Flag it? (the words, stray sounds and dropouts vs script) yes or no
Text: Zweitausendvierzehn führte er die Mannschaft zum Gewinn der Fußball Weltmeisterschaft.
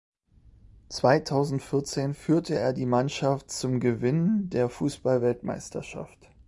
no